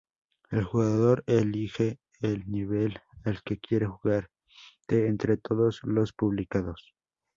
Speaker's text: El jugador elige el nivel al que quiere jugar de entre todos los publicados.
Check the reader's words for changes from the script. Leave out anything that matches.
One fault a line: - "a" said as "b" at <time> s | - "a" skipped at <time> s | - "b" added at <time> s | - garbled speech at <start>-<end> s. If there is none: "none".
none